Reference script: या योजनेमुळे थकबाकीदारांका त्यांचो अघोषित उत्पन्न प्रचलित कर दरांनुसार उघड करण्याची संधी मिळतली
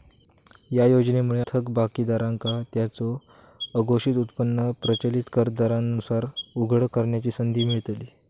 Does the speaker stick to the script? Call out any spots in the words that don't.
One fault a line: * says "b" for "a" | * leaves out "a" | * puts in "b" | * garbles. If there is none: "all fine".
all fine